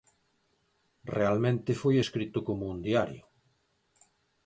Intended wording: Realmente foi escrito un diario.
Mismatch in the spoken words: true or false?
true